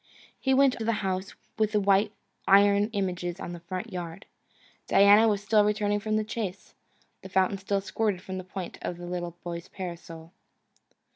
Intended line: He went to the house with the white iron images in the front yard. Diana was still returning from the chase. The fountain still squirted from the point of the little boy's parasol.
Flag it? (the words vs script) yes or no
no